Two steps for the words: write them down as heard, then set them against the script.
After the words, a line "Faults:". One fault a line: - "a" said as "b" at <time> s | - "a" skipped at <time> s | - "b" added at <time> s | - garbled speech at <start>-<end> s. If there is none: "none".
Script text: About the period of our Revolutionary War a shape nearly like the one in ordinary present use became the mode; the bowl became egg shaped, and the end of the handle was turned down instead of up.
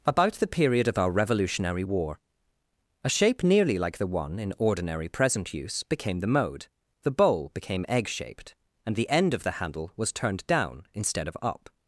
About the period of our Revolutionary War a shape nearly like the one in ordinary present use became the mode; the bowl became egg shaped, and the end of the handle was turned down instead of up.
Faults:
none